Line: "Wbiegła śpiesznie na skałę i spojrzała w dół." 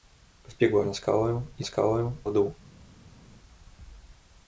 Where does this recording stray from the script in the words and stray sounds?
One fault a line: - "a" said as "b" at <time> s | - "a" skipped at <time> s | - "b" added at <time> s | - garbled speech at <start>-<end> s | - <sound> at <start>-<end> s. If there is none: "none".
- "śpiesznie" skipped at 0.8 s
- "spojrzała" said as "skałę" at 1.6 s